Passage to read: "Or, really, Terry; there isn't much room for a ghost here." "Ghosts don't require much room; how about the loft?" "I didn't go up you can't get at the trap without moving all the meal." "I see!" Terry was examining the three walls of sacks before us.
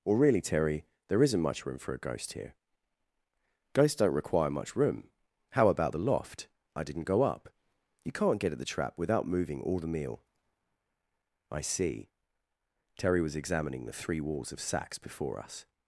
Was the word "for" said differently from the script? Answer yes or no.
no